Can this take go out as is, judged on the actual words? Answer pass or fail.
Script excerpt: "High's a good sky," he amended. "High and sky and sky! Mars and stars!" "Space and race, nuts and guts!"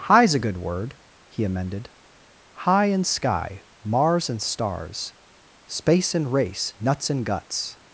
fail